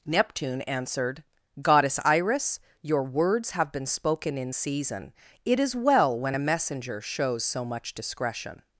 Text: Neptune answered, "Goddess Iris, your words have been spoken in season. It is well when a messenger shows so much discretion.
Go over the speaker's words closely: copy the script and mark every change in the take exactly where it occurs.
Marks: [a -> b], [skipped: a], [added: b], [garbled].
Neptune answered, "Goddess Iris, your words have been spoken in season. It is well when a messenger shows so much discretion.